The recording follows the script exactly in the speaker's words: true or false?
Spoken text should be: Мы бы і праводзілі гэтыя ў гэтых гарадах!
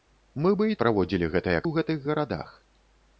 true